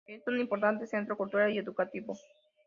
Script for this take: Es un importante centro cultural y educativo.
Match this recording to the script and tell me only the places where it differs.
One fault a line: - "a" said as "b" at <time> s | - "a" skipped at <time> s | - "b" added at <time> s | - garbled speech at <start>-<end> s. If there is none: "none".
none